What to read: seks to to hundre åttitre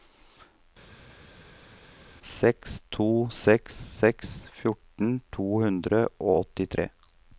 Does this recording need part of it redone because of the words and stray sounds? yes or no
yes